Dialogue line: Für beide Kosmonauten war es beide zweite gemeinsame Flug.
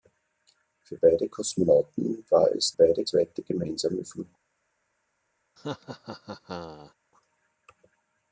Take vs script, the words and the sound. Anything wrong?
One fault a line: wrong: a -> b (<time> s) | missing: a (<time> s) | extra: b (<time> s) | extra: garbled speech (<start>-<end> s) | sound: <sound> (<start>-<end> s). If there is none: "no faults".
sound: laugh (5.6-6.9 s)